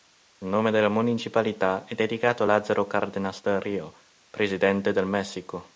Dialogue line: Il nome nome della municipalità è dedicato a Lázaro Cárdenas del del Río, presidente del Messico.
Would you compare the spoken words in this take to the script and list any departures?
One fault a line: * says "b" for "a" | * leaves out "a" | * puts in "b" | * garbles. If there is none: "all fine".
* leaves out "nome"
* leaves out "del"